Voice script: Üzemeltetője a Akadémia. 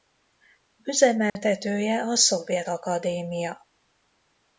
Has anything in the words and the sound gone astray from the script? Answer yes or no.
yes